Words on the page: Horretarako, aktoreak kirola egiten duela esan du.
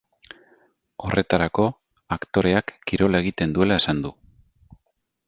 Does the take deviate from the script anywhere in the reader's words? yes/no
no